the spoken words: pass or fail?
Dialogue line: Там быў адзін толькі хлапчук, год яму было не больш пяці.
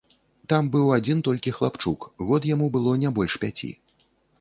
pass